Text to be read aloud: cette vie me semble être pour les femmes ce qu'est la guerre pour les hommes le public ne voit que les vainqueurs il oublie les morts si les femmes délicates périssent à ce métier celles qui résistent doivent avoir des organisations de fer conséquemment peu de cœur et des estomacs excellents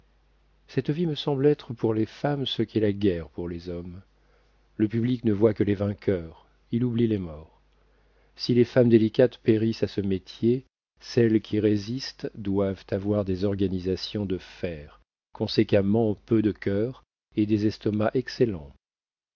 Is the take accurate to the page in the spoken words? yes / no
yes